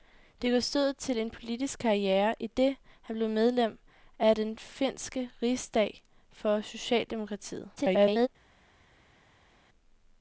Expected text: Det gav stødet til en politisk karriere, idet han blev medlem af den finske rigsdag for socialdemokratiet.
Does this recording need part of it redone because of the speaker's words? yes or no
yes